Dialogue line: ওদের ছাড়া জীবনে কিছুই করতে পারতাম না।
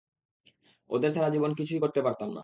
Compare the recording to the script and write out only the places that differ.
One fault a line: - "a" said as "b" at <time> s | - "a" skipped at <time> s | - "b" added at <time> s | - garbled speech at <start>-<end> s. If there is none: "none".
none